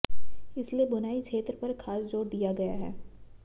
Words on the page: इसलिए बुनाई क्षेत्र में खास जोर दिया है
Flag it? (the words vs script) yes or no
yes